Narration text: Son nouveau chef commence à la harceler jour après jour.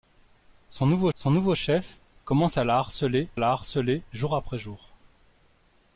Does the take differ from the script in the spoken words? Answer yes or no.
yes